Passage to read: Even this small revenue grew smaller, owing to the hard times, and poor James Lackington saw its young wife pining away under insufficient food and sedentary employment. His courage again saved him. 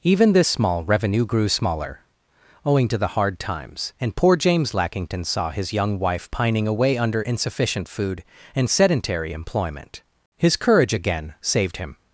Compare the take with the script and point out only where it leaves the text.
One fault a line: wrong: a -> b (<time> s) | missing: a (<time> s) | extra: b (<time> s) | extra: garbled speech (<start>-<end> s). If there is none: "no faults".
wrong: its -> his (5.5 s)